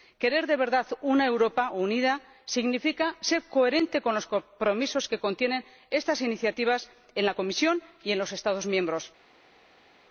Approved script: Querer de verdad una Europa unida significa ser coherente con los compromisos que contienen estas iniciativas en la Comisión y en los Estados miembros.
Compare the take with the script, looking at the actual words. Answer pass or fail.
pass